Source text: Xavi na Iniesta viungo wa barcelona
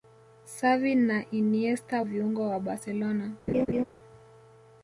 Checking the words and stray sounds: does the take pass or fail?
fail